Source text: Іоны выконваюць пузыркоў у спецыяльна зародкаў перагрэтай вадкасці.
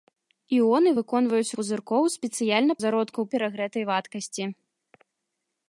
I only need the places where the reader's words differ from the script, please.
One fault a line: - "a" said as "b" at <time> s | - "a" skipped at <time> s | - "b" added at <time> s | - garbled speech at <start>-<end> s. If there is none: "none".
none